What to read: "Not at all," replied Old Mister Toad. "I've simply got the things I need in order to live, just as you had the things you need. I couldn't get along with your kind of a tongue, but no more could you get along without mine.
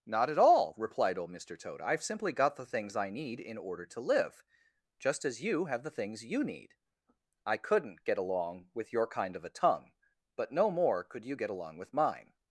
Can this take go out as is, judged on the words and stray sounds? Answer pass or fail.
fail